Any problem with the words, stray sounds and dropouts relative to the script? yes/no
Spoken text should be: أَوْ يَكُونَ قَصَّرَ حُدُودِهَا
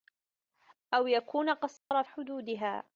yes